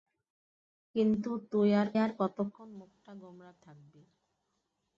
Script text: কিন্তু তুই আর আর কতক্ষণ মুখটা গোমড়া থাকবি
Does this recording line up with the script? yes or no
yes